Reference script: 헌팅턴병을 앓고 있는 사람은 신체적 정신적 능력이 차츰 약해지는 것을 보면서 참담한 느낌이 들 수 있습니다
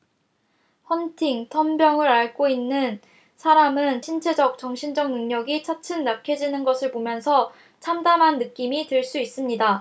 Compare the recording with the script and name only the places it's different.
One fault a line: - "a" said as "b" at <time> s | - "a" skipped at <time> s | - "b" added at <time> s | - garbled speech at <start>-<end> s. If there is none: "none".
none